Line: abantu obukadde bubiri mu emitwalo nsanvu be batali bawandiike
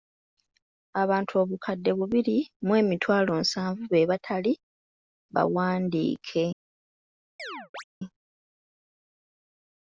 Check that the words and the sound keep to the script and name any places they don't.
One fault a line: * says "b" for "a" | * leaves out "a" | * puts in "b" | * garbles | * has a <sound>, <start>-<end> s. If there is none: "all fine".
* has a chirp, 7.4-7.8 s